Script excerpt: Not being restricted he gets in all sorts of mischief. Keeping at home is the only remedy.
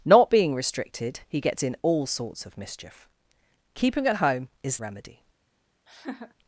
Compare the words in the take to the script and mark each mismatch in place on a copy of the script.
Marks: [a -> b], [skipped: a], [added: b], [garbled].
Not being restricted he gets in all sorts of mischief. Keeping at home is [skipped: the only] remedy.